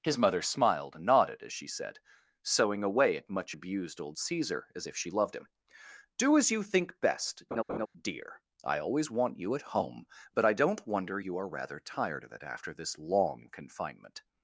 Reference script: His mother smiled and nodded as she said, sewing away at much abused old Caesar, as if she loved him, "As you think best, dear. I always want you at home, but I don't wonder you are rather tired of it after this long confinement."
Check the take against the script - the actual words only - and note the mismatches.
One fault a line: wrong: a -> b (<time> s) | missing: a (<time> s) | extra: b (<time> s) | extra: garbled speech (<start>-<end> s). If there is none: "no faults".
extra: Do (6.2 s)